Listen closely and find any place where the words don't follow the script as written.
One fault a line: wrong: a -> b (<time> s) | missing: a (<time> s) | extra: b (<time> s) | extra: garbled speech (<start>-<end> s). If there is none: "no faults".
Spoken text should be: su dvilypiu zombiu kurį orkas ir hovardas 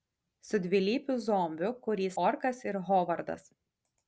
no faults